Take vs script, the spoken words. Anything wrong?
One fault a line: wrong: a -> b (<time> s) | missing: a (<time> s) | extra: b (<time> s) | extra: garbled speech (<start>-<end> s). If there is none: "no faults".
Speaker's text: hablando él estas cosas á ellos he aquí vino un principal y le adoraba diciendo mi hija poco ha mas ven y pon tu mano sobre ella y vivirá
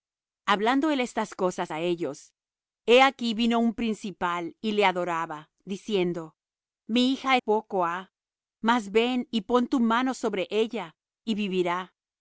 no faults